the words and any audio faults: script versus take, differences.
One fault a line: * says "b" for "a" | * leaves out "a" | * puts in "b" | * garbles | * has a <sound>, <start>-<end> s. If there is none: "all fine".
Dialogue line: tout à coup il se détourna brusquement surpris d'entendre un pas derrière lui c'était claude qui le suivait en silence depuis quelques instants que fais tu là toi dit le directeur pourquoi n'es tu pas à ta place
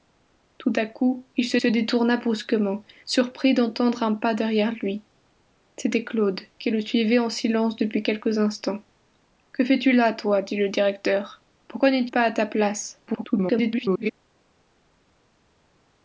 * puts in "se"
* leaves out "tu"
* garbles